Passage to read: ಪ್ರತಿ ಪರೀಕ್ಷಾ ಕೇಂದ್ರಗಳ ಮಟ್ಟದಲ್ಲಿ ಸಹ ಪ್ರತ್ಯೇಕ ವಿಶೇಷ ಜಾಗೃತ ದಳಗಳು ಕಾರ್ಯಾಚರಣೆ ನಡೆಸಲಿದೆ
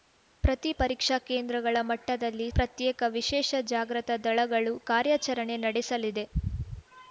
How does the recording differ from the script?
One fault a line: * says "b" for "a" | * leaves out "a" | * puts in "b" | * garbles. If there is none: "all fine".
* leaves out "ಸಹ"